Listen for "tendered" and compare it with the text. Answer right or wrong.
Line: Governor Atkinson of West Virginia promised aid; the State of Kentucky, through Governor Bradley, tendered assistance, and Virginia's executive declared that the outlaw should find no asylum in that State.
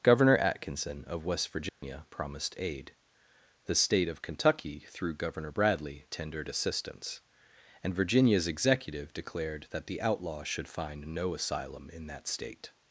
right